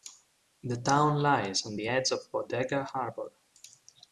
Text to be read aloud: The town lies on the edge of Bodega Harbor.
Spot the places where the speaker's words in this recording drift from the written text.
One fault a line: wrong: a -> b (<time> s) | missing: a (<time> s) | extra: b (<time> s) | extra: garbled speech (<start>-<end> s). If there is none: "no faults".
no faults